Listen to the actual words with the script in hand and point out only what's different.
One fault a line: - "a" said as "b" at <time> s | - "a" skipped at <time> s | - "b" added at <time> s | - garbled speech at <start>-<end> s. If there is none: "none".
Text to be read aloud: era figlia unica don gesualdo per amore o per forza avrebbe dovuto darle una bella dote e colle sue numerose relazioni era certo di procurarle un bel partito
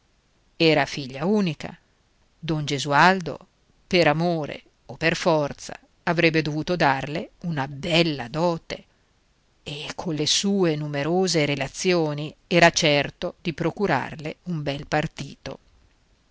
none